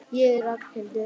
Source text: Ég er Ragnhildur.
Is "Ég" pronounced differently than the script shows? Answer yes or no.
no